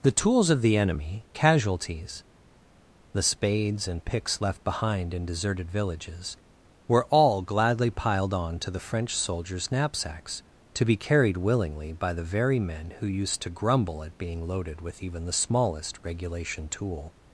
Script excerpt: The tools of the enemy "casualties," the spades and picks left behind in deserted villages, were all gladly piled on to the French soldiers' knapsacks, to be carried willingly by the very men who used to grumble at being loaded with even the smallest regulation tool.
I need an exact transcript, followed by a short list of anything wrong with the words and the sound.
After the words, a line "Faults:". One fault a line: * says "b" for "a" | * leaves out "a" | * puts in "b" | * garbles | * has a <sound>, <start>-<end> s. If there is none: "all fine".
The tools of the enemy "casualties," the spades and picks left behind in deserted villages, were all gladly piled on to the French soldiers' knapsacks, to be carried willingly by the very men who used to grumble at being loaded with even the smallest regulation tool.
Faults:
all fine